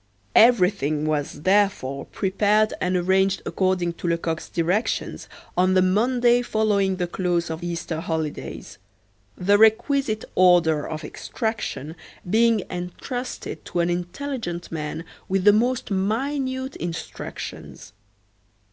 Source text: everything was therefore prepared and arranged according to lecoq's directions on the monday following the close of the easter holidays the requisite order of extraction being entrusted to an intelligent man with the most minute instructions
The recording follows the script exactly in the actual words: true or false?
false